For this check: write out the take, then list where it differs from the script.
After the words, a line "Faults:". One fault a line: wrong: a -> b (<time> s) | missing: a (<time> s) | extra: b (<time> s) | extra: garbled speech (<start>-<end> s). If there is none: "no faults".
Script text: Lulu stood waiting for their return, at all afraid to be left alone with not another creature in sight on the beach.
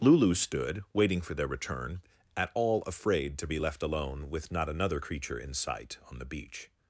Lulu stood waiting for their return, at all afraid to be left alone with not another creature in sight on the beach.
Faults:
no faults